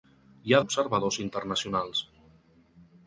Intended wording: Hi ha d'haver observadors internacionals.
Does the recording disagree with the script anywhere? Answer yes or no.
yes